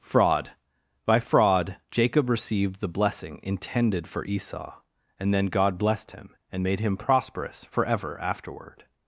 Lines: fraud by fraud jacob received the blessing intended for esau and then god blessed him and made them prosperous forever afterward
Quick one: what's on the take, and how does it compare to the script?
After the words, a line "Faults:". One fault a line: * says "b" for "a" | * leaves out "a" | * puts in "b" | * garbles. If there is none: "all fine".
fraud by fraud jacob received the blessing intended for esau and then god blessed him and made him prosperous forever afterward
Faults:
* says "him" for "them"